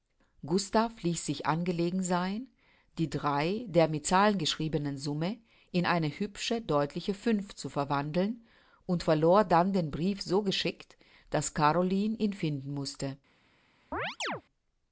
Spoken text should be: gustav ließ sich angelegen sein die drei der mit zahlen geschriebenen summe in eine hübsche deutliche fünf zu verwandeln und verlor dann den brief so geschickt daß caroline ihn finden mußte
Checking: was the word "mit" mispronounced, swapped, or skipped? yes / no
no